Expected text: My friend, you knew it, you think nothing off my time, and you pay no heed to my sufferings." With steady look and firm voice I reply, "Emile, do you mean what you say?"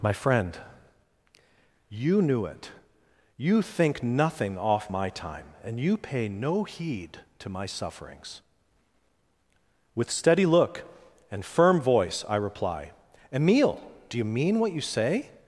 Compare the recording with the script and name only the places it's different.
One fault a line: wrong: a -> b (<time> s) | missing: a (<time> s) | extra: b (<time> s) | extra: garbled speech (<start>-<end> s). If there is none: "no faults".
no faults